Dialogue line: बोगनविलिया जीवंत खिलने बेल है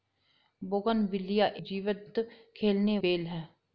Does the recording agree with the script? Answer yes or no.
yes